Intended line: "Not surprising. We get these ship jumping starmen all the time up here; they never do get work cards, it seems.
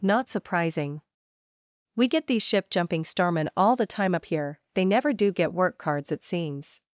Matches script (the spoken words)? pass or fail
pass